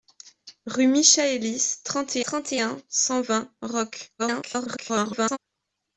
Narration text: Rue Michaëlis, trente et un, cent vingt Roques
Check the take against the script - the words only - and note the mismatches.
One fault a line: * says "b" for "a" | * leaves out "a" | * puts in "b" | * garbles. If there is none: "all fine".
* puts in "trente et"
* garbles